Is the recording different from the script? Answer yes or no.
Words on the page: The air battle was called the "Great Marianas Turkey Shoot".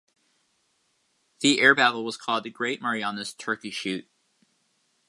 no